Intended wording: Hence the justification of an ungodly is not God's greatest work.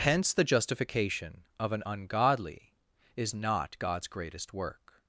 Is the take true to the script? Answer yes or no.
yes